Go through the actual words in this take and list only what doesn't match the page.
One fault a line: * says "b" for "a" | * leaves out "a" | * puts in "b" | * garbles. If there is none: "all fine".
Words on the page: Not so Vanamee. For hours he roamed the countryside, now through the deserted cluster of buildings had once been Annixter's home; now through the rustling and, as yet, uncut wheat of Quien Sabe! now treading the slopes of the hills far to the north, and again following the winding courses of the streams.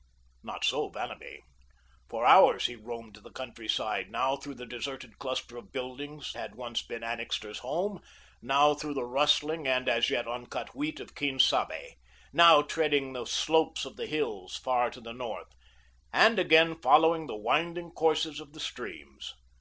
all fine